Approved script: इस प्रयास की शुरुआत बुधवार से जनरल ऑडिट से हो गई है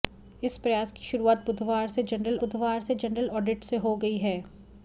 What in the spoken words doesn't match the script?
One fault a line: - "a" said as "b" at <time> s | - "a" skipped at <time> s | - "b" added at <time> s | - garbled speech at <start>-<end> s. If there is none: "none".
- "बुधवार से जनरल" added at 2.4 s